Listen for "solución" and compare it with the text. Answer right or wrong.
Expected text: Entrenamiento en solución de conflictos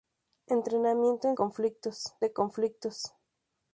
wrong